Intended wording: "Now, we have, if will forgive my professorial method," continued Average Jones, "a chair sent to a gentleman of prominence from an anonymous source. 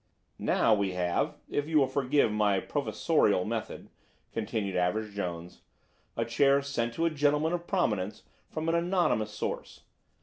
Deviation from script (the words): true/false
true